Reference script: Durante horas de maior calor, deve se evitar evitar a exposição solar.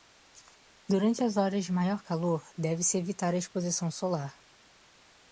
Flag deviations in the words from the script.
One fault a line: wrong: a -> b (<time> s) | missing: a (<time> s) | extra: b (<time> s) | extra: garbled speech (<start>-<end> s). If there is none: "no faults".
extra: as (1.2 s)
missing: evitar (3.4 s)